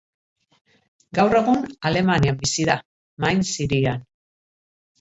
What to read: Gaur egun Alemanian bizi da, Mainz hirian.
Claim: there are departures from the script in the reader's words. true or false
false